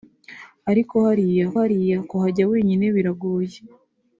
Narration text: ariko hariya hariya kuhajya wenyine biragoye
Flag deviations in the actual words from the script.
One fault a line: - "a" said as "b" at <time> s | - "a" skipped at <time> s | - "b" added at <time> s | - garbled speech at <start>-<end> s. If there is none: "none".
none